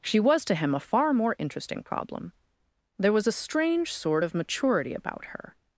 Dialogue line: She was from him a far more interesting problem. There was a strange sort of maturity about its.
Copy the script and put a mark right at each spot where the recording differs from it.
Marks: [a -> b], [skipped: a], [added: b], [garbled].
She was [from -> to] him a far more interesting problem. There was a strange sort of maturity about [its. -> her]